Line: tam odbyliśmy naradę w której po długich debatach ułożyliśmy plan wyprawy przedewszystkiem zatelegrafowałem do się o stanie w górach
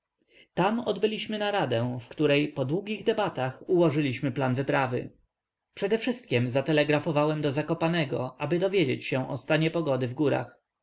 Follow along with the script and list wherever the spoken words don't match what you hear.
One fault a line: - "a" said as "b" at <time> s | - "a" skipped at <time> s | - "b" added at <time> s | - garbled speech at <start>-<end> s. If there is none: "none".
- "zakopanego aby dowiedzieć" added at 7.5 s
- "pogody" added at 9.7 s